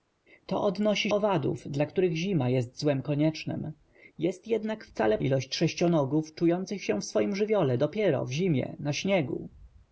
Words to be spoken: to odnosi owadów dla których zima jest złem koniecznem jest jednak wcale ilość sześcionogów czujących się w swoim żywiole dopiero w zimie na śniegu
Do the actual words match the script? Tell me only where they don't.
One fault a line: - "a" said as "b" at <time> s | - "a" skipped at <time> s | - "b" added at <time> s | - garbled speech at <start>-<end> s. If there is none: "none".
none